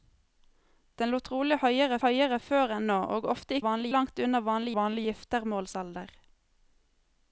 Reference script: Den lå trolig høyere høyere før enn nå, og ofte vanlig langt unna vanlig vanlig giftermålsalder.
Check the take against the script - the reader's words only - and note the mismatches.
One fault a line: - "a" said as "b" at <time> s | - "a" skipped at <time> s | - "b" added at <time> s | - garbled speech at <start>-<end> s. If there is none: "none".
none